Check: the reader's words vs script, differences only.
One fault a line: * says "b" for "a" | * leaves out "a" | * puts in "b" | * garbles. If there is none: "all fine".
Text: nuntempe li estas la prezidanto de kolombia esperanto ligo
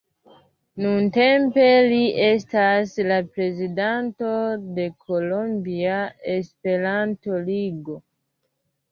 all fine